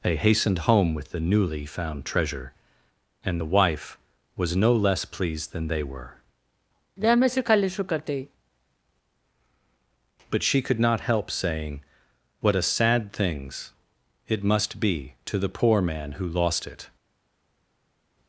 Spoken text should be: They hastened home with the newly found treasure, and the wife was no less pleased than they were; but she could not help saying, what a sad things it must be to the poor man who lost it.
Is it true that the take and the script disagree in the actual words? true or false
false